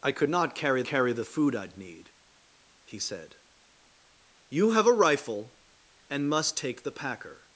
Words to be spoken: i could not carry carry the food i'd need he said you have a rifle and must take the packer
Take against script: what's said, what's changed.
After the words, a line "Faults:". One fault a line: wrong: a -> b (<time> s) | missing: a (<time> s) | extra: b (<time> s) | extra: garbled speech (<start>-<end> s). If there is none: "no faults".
i could not carry carry the food i'd need he said you have a rifle and must take the packer
Faults:
no faults